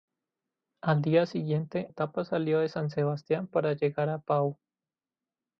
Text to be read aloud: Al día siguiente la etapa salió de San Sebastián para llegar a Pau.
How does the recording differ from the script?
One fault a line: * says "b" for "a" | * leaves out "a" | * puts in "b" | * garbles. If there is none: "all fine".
* leaves out "la"